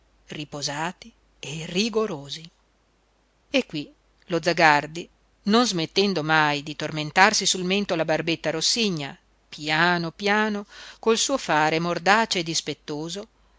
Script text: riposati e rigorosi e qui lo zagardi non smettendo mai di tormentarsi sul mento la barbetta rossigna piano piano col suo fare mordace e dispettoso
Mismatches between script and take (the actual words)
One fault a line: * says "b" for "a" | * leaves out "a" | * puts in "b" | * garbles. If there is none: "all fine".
all fine